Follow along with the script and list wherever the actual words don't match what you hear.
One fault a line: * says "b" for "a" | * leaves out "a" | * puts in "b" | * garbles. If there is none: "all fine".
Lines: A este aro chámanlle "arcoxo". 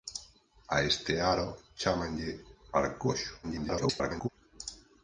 * garbles